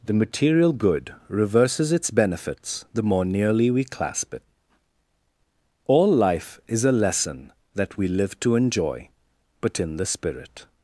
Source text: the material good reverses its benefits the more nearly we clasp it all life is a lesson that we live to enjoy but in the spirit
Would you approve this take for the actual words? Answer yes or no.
yes